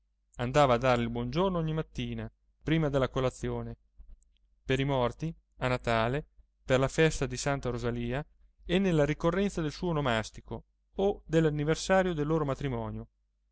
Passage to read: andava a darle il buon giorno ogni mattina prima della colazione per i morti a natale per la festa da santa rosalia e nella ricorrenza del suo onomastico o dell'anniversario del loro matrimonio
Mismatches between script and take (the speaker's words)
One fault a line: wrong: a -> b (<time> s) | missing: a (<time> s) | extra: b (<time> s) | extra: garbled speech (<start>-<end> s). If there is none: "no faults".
wrong: da -> di (7.3 s)